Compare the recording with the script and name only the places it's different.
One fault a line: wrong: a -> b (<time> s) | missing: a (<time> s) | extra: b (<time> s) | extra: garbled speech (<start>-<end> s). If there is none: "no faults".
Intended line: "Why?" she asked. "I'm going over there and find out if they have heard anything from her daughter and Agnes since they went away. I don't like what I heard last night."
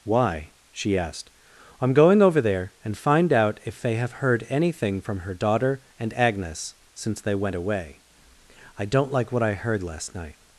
no faults